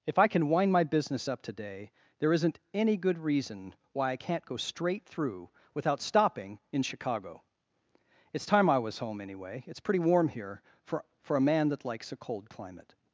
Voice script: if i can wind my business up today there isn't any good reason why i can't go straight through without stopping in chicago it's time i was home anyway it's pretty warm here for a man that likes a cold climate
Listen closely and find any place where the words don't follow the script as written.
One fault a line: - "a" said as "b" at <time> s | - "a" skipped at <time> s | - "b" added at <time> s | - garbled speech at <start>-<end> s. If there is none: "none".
- "for" added at 11.2 s